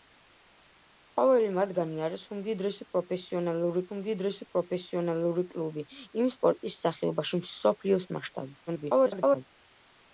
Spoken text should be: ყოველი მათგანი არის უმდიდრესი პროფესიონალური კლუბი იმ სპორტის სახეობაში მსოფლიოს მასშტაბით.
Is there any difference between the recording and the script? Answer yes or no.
yes